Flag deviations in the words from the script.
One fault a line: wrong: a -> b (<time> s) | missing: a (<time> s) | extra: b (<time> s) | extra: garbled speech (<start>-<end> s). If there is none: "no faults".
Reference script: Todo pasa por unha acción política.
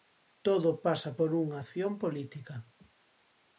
no faults